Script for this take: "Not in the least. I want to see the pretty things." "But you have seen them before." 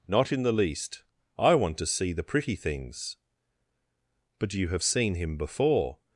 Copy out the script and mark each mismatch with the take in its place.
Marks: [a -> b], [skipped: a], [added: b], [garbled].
"Not in the least. I want to see the pretty things." "But you have seen [them -> him] before."